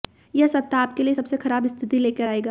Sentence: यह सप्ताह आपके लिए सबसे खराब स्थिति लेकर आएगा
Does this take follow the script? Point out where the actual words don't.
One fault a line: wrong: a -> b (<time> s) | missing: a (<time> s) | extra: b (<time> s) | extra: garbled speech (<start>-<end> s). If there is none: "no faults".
no faults